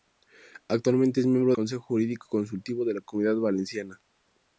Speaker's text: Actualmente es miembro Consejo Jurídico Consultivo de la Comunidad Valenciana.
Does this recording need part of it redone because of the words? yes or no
no